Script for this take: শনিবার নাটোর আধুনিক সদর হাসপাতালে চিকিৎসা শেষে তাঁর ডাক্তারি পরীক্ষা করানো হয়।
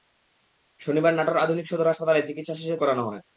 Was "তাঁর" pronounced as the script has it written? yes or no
no